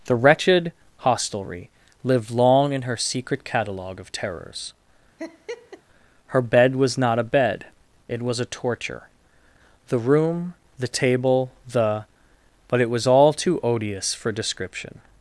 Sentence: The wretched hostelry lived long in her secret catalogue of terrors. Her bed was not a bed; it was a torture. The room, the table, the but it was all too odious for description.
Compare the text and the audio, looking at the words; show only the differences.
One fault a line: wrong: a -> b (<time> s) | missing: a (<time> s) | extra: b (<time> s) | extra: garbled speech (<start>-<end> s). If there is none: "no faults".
no faults